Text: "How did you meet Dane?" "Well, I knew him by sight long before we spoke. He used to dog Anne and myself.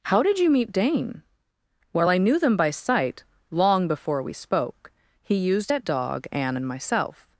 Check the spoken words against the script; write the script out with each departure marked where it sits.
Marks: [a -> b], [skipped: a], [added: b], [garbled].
"How did you meet Dane?" "Well, I knew [him -> them] by sight long before we spoke. He used [to -> at] dog Anne and myself.